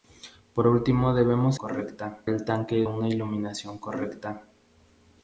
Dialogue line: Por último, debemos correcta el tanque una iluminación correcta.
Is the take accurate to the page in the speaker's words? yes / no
yes